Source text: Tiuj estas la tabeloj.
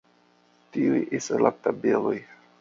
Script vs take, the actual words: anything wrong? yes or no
no